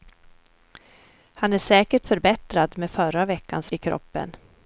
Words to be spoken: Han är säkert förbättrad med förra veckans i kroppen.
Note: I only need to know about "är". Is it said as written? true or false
true